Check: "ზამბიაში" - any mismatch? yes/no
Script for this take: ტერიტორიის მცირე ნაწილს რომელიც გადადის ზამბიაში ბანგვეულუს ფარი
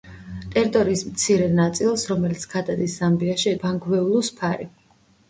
no